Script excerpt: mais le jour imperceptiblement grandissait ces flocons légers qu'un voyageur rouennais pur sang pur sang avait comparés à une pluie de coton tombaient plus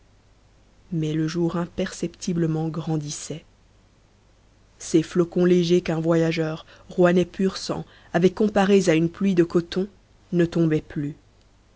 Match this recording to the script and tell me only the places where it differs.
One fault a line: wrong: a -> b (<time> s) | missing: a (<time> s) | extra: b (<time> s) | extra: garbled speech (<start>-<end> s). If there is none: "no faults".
missing: pur sang (7.8 s)
extra: ne (10.3 s)